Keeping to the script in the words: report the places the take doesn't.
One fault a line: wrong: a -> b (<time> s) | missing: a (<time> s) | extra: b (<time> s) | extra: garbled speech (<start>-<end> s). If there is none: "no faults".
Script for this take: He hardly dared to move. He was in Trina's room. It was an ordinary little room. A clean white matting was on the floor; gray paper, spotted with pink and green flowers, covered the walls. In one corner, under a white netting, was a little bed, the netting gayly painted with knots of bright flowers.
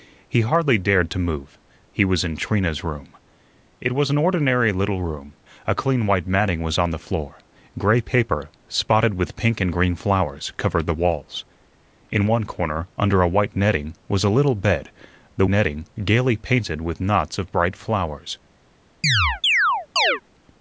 no faults